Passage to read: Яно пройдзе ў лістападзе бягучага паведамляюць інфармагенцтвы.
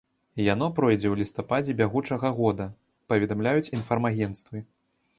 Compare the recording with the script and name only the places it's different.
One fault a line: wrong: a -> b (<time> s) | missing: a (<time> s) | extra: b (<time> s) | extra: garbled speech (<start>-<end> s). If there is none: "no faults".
extra: года (2.4 s)